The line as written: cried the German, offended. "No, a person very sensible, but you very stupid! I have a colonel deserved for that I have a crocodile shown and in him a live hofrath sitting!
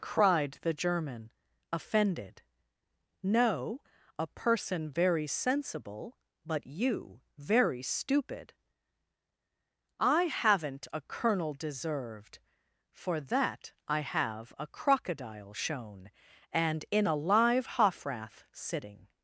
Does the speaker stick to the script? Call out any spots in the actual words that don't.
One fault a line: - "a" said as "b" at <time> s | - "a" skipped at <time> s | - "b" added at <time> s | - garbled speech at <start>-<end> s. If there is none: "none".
- "have" said as "haven't" at 10.2 s
- "him" skipped at 17.1 s